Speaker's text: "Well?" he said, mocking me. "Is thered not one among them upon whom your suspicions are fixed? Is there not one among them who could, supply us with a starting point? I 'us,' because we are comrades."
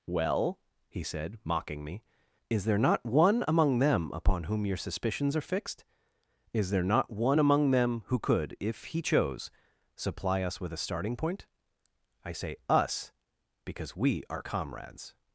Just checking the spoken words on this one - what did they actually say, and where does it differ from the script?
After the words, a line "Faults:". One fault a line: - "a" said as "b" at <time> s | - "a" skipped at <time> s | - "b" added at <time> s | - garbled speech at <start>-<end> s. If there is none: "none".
"Well?" he said, mocking me. "Is there not one among them upon whom your suspicions are fixed? Is there not one among them who could, if he chose, supply us with a starting point? I say 'us,' because we are comrades."
Faults:
- "thered" said as "there" at 2.7 s
- "if he chose" added at 8.6 s
- "say" added at 12.3 s